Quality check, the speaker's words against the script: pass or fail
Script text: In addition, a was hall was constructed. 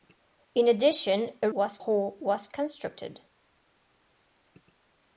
pass